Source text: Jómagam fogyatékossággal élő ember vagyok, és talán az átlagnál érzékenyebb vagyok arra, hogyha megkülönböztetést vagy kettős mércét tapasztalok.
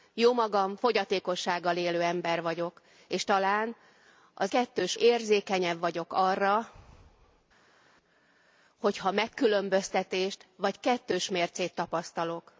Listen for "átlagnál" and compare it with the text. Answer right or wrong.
wrong